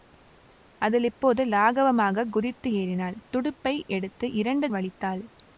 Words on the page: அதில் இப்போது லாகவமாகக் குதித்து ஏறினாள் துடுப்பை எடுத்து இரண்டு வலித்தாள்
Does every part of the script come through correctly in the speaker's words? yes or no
yes